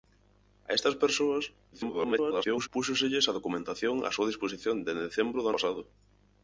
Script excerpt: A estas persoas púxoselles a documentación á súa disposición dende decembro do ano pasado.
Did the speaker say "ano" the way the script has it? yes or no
no